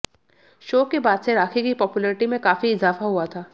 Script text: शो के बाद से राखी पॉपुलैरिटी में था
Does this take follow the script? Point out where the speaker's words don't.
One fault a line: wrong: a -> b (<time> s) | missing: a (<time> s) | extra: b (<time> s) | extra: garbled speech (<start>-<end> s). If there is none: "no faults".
extra: की (1.6 s)
extra: काफी इजाफा हुआ (2.4 s)